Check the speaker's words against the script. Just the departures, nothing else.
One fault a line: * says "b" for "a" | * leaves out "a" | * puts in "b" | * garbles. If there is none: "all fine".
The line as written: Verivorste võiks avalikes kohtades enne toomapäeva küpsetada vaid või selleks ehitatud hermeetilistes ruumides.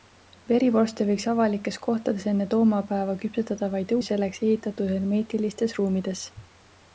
all fine